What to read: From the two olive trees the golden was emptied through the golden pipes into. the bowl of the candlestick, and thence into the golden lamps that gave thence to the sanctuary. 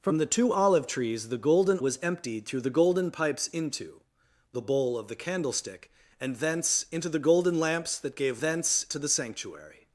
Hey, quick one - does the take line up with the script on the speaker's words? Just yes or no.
yes